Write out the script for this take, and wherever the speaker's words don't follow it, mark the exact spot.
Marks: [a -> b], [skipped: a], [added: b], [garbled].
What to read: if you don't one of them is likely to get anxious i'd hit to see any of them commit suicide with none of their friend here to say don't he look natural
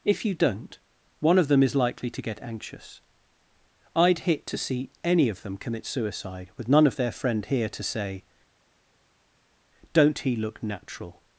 if you don't one of them is likely to get anxious i'd hit to see any of them commit suicide with none of their friend here to say don't he look natural